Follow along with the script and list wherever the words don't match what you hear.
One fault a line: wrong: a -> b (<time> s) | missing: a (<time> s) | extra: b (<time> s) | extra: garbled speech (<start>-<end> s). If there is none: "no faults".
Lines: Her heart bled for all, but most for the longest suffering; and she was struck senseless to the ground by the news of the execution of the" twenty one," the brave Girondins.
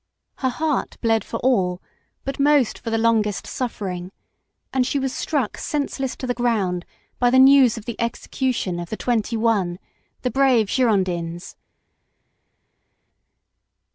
no faults